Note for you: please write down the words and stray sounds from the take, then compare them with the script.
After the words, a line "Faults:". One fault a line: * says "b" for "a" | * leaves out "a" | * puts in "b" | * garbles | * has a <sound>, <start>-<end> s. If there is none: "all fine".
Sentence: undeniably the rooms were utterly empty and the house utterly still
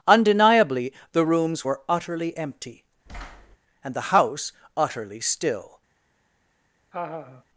undeniably the rooms were utterly empty and the house utterly still
Faults:
* has a thud, 3.1-3.6 s
* has a laugh, 6.9-7.4 s